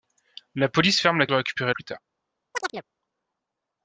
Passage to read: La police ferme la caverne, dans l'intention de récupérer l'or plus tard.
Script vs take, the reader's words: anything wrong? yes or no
yes